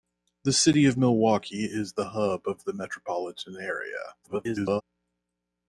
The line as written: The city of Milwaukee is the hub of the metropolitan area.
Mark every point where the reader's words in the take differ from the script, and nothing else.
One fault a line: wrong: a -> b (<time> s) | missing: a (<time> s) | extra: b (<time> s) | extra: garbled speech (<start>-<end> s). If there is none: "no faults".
extra: garbled speech (4.2-4.8 s)